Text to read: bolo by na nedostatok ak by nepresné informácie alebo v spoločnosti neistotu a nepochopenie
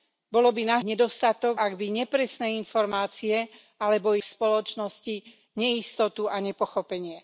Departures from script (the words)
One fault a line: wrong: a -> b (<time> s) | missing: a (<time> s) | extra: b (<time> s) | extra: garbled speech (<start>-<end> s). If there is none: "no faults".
no faults